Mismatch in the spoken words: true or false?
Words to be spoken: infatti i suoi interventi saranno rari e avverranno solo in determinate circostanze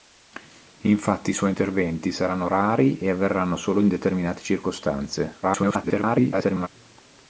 true